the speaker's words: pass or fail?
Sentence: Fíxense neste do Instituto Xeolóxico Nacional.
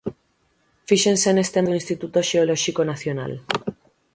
pass